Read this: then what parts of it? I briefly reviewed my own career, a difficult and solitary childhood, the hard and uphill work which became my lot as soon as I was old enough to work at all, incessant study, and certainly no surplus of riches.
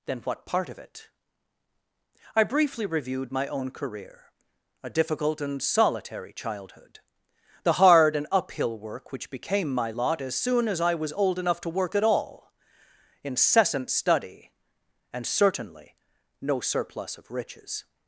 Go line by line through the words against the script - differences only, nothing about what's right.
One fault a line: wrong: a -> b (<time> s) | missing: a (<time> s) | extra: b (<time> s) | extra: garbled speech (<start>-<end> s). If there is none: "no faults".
wrong: parts -> part (0.5 s)